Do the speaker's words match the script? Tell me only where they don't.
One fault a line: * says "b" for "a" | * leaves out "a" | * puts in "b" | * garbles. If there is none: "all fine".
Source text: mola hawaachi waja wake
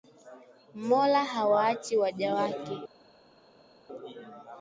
all fine